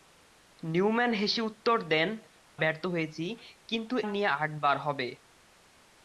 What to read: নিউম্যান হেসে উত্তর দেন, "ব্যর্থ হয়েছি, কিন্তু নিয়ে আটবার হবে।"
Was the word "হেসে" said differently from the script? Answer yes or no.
no